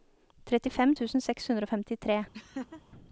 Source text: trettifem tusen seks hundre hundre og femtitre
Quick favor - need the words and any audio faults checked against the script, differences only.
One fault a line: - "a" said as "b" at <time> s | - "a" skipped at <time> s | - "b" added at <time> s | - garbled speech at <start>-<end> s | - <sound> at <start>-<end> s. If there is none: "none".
- "hundre" skipped at 1.7 s
- laugh at 2.3-2.8 s